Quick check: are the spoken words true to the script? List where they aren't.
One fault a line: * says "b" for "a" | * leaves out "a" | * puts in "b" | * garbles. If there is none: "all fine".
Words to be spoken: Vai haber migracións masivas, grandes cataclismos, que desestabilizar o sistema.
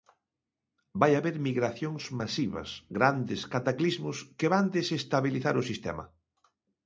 * puts in "van"